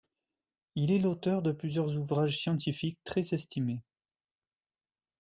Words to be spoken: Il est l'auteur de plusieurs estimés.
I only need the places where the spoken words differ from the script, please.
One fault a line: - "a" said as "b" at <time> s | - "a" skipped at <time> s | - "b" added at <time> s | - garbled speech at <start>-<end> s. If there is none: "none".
- "ouvrages scientifiques très" added at 1.9 s